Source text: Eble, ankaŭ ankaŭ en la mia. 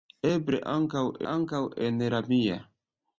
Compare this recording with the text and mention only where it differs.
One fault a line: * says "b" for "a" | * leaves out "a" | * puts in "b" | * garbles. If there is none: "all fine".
all fine